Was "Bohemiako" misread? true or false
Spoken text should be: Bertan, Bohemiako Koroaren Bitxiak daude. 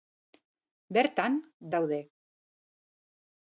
true